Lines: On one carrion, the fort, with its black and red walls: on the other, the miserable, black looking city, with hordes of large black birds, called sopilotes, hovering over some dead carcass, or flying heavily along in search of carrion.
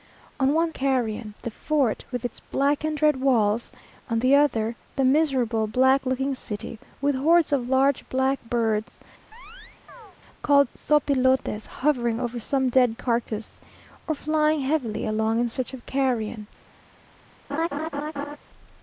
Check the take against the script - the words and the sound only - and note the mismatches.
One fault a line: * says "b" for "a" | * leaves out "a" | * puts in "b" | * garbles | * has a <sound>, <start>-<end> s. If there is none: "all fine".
* has a chirp, 9.3-10.2 s
* has a laugh, 17.5-18.4 s